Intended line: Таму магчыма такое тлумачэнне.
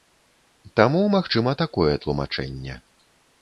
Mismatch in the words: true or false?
false